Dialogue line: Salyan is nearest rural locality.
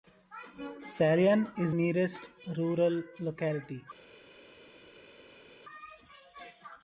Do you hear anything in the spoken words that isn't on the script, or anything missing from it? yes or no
no